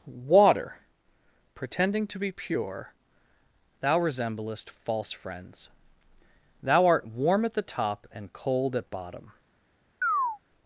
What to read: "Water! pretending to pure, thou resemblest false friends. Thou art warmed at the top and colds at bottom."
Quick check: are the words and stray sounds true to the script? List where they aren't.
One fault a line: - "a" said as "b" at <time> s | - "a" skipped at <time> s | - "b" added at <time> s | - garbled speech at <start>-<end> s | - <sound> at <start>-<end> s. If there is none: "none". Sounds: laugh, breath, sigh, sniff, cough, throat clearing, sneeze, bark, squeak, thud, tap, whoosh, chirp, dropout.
- "be" added at 2.2 s
- "warmed" said as "warm" at 7.0 s
- "colds" said as "cold" at 8.3 s
- chirp at 10.0-10.4 s